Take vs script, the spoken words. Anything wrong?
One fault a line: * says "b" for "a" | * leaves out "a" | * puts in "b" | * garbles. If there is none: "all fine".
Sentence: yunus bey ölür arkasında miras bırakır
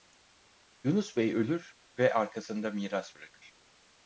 * puts in "ve"